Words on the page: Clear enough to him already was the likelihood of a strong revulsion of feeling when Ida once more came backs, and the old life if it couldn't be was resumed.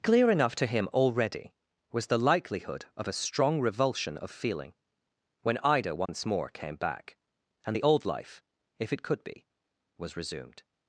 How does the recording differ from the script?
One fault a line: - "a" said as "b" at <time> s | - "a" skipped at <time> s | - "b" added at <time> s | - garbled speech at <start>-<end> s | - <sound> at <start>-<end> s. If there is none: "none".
- dropout at 6.1-6.1 s
- "backs" said as "back" at 6.8 s
- "couldn't" said as "could" at 9.0 s